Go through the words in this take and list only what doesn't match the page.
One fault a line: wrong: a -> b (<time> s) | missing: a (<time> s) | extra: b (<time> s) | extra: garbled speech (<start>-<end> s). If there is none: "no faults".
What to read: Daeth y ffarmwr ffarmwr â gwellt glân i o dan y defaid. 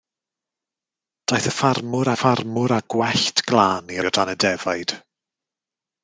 no faults